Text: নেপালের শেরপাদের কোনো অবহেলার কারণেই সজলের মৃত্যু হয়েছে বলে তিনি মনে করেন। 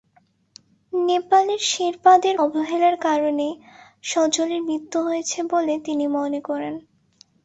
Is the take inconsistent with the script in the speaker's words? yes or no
yes